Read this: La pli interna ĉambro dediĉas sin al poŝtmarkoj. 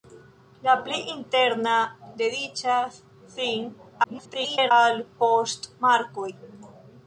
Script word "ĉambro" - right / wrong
wrong